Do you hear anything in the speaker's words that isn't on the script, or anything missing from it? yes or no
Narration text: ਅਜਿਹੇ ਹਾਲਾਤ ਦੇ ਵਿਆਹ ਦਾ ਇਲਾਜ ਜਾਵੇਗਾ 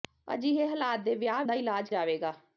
no